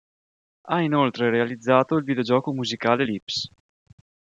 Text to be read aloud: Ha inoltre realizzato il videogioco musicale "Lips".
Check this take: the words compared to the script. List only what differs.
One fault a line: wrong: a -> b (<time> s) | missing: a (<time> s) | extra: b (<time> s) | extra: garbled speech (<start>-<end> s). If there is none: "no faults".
no faults